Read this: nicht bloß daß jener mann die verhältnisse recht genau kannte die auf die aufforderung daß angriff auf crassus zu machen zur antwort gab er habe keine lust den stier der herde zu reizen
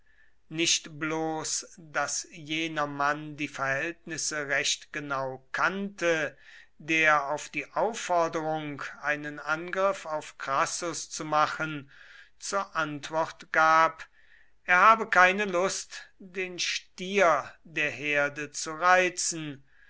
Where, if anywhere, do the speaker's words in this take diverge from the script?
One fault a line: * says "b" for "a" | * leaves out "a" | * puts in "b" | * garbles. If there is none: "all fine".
* says "der" for "die"
* says "einen" for "daß"